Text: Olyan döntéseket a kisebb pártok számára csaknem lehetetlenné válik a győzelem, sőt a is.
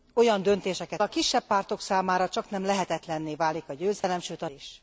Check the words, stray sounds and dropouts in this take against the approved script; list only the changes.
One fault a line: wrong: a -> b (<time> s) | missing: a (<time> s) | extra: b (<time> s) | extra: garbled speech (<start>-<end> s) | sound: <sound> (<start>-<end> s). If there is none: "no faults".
sound: dropout (4.0-4.0 s)